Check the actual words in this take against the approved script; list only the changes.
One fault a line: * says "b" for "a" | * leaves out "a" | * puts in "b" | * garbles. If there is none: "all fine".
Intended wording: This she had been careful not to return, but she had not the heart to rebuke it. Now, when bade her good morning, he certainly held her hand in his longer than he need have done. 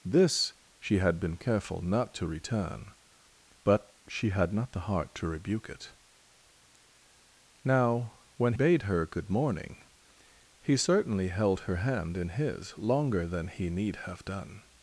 all fine